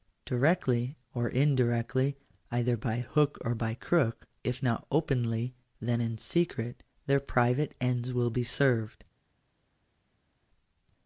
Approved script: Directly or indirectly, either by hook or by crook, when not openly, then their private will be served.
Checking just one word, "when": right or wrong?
wrong